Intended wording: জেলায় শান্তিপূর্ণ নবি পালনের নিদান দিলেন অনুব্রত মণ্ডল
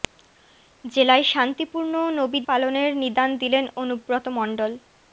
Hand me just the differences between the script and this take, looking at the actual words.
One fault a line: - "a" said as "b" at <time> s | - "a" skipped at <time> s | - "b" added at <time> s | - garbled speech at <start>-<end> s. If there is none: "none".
none